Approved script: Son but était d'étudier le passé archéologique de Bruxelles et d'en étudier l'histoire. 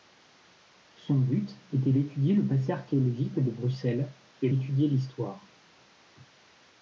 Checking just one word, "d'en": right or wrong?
wrong